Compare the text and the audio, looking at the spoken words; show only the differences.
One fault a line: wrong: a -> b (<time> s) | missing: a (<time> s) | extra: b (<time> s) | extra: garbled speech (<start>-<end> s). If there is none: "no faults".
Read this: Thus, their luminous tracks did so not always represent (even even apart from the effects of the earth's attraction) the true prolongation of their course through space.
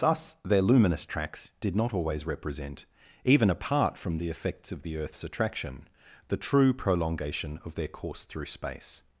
missing: so (1.8 s)
missing: even (3.5 s)